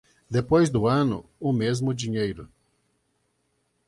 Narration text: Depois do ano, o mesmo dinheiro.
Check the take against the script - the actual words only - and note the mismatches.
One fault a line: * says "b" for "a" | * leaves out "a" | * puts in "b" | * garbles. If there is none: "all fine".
all fine